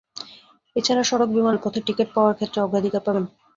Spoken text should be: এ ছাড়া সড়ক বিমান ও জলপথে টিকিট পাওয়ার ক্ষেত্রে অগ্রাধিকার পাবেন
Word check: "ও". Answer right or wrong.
wrong